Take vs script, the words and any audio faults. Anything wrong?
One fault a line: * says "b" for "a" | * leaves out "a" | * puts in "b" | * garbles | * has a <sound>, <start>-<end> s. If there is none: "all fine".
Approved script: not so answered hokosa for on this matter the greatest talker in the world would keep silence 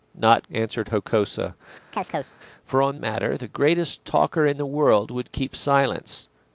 * leaves out "so"
* has a chirp, 1.9-2.4 s
* leaves out "this"